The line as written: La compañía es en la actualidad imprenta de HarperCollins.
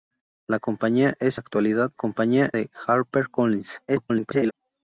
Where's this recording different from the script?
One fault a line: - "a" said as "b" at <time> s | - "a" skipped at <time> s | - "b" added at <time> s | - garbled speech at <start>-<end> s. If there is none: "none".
- "en" skipped at 1.4 s
- "imprenta" said as "compañía" at 1.9 s
- garbled speech at 3.9-4.5 s